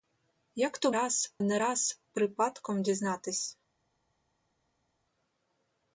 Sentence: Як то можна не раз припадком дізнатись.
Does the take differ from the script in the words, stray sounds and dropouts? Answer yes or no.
yes